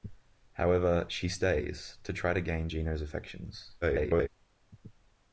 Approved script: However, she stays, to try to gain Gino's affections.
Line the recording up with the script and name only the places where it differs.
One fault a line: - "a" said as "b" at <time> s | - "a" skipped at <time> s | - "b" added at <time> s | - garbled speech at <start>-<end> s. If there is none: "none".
- garbled speech at 3.8-4.3 s